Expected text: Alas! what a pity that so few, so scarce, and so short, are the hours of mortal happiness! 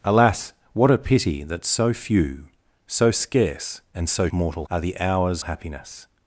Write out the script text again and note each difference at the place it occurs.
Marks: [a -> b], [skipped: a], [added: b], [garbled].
Alas! what a pity that so few, so scarce, and so [short, -> mortal] are the hours [skipped: of mortal] happiness!